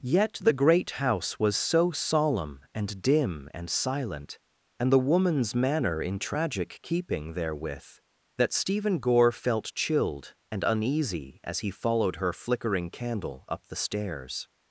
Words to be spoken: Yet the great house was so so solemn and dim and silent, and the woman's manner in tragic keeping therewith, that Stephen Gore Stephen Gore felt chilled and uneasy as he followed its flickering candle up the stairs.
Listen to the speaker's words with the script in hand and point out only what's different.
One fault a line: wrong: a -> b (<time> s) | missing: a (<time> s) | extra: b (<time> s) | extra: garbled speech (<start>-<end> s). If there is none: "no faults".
missing: so (1.9 s)
missing: Stephen Gore (9.3 s)
wrong: its -> her (12.2 s)